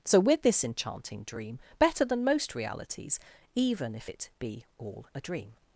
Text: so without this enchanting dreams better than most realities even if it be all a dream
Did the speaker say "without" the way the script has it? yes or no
no